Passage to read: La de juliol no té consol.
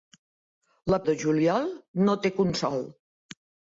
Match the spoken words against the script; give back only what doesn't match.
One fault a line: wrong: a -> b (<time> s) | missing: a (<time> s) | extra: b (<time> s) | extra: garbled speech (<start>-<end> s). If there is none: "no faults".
no faults